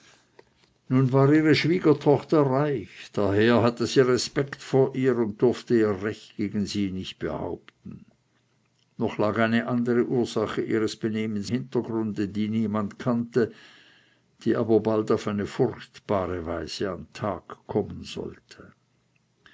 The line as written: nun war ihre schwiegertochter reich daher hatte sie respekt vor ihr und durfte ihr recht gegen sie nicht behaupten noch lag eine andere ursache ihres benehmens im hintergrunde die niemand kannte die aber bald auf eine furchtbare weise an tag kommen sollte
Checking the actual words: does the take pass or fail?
fail